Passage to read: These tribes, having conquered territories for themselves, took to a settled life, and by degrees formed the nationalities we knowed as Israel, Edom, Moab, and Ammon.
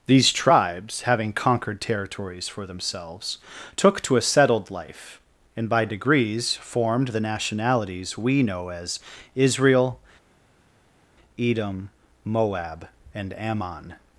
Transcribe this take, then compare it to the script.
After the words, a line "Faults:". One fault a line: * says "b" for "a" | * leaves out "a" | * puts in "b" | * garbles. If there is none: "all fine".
These tribes, having conquered territories for themselves, took to a settled life, and by degrees formed the nationalities we know as Israel, Edom, Moab, and Ammon.
Faults:
* says "know" for "knowed"